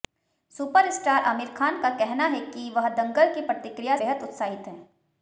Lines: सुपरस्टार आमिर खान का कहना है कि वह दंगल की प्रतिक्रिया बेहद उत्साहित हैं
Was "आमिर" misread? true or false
false